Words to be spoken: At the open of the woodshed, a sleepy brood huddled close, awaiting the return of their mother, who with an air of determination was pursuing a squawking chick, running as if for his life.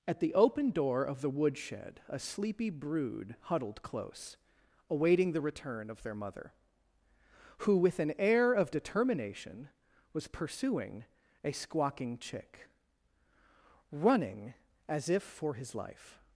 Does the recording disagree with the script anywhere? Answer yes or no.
yes